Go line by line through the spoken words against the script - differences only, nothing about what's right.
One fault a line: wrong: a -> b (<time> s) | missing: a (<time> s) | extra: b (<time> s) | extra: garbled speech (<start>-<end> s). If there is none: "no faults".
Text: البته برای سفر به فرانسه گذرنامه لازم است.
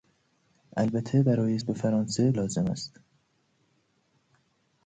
missing: سفر (1.6 s)
missing: گذرنامه (2.3 s)